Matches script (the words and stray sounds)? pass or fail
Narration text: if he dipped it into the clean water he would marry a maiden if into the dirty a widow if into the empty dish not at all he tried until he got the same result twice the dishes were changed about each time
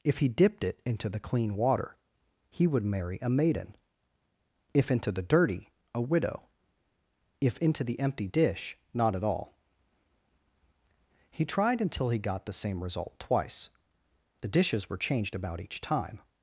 pass